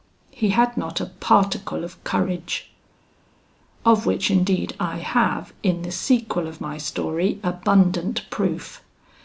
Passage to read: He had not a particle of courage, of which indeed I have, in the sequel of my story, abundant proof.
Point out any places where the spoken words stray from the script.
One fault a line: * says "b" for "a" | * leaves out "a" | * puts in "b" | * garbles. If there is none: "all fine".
all fine